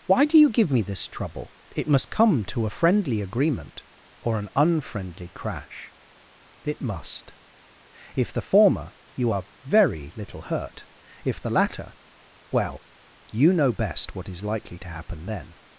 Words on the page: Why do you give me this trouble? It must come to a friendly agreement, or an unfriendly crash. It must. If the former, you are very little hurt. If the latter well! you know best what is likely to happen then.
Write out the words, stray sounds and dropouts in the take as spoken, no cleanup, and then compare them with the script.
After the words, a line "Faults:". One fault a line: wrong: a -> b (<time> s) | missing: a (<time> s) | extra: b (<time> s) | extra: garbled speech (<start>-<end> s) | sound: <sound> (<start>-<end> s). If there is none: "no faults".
Why do you give me this trouble? It must come to a friendly agreement, or an unfriendly crash. It must. If the former, you are very little hurt. If the latter well! you know best what is likely to happen then.
Faults:
no faults